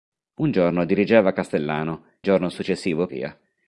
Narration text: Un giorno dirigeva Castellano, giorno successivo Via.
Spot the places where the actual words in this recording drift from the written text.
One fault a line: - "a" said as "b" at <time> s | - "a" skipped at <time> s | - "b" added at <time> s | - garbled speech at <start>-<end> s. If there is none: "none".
none